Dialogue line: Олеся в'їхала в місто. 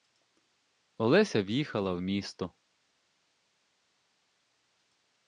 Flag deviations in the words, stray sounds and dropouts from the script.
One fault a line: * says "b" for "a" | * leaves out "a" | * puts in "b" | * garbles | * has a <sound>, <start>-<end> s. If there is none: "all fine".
all fine